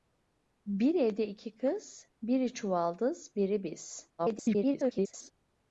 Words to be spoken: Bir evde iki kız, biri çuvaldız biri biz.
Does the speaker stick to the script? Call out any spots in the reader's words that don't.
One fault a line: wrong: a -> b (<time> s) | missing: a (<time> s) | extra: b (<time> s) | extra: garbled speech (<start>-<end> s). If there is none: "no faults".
extra: garbled speech (4.2-5.3 s)